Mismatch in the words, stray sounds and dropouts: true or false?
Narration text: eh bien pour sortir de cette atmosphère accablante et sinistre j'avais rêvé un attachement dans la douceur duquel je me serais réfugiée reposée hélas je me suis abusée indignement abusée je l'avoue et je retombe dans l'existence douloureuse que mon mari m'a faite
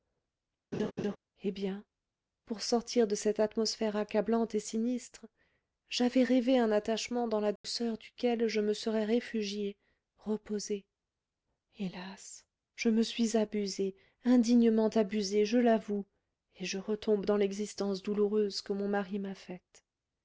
true